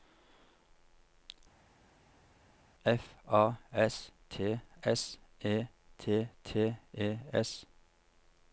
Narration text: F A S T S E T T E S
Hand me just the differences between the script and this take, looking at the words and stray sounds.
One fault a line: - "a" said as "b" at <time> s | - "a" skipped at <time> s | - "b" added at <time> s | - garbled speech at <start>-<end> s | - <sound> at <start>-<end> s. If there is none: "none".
none